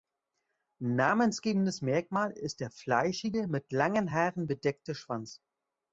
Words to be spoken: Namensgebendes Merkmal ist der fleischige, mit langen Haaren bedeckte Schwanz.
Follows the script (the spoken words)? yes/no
yes